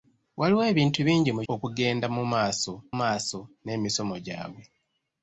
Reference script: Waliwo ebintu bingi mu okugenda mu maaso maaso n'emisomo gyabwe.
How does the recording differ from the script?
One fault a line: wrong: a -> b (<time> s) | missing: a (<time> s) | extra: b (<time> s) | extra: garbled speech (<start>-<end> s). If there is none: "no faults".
no faults